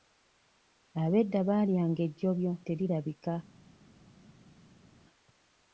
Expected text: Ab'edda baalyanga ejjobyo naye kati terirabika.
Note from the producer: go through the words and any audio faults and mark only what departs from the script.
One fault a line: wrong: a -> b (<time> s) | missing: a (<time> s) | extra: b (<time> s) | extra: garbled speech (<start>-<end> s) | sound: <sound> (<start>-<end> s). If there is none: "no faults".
missing: naye kati (2.5 s)